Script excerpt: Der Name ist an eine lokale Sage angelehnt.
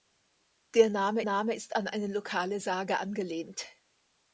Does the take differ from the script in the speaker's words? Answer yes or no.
yes